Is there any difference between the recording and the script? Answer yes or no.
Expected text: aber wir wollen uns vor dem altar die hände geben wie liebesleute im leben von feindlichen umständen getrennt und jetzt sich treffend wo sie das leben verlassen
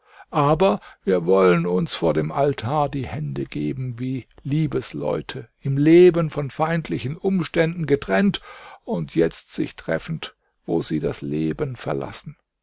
no